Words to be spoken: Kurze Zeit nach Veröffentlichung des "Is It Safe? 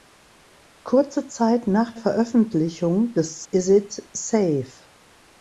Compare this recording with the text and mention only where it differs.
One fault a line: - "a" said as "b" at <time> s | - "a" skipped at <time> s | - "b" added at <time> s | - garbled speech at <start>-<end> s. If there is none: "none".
none